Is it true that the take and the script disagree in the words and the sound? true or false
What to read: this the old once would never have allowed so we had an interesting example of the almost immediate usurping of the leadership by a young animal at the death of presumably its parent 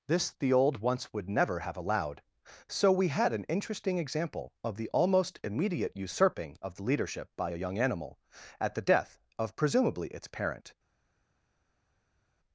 false